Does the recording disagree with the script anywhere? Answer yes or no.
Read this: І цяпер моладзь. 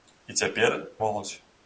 no